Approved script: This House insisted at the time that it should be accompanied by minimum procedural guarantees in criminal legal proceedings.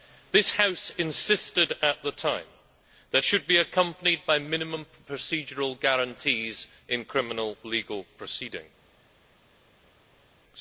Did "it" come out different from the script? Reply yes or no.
yes